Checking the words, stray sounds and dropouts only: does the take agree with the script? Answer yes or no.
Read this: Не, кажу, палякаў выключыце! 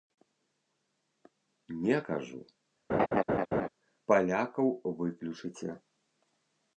no